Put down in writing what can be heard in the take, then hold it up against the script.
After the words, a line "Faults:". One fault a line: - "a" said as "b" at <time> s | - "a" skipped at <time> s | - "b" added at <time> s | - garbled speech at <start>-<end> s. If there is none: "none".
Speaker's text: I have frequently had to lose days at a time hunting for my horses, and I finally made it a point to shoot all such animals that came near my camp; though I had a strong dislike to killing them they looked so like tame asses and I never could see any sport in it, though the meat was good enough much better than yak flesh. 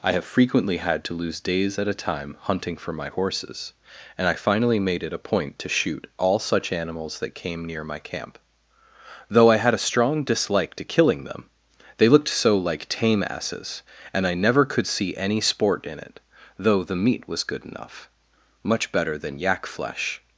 I have frequently had to lose days at a time hunting for my horses, and I finally made it a point to shoot all such animals that came near my camp; though I had a strong dislike to killing them they looked so like tame asses and I never could see any sport in it, though the meat was good enough much better than yak flesh.
Faults:
none